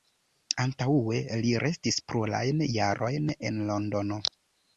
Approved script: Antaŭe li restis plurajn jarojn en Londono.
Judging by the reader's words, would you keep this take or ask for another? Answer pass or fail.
pass